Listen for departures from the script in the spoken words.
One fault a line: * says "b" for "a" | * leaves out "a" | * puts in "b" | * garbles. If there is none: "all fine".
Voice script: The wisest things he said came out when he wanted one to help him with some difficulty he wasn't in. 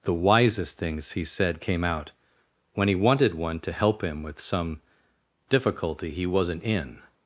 all fine